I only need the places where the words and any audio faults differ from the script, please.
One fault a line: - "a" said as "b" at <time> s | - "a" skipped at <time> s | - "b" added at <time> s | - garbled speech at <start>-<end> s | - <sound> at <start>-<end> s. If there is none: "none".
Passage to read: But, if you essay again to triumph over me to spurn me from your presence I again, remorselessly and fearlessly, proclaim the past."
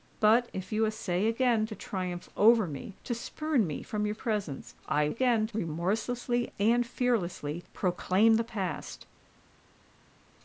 none